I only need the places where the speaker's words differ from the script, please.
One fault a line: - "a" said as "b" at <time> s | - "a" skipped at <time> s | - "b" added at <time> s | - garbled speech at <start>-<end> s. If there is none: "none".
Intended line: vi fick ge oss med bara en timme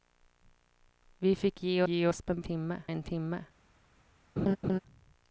- "ge" added at 1.9 s
- "bara" said as "timme" at 2.4 s